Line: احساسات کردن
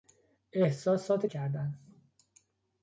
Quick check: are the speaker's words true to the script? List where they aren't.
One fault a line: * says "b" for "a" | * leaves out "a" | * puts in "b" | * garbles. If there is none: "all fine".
all fine